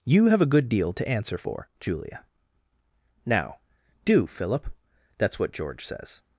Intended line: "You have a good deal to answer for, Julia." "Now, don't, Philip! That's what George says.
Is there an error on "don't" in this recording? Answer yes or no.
yes